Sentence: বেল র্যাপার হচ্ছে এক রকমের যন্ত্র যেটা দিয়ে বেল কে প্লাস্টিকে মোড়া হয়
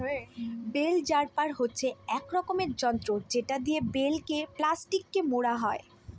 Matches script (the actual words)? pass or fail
pass